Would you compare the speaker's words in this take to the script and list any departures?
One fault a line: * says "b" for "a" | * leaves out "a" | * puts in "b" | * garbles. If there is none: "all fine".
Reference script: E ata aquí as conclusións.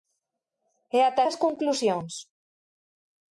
* leaves out "aquí"